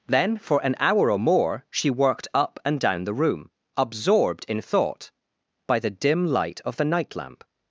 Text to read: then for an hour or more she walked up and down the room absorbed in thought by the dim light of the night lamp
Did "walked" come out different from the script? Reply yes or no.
yes